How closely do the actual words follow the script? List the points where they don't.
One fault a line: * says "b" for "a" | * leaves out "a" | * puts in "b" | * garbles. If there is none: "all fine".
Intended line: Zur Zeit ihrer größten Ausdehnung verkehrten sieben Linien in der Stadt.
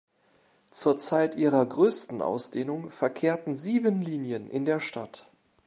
all fine